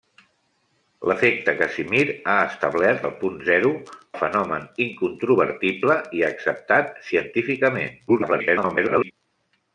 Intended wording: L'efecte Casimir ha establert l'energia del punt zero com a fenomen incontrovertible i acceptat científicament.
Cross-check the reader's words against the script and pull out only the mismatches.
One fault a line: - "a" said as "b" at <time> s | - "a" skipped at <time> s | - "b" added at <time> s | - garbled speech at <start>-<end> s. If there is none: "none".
- "l'energia" skipped at 3.0 s
- "com" skipped at 3.7 s
- garbled speech at 8.1-9.1 s